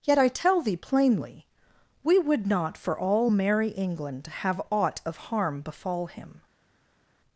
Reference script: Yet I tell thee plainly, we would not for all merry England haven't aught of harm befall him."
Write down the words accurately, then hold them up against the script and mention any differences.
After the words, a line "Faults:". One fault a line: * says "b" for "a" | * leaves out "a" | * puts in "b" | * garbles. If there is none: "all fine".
Yet I tell thee plainly, we would not for all merry England have aught of harm befall him."
Faults:
* says "have" for "haven't"